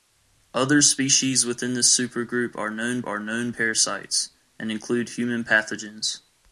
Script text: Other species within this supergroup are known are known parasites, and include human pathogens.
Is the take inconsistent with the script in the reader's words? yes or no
no